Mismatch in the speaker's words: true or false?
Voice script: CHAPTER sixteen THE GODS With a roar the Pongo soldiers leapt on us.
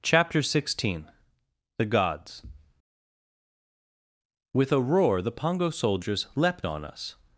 false